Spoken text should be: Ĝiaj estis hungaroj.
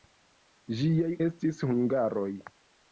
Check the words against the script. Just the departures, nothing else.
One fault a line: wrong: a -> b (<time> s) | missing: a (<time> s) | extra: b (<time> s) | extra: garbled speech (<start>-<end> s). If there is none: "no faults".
no faults